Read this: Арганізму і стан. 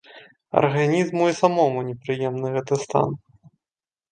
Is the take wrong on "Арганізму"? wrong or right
right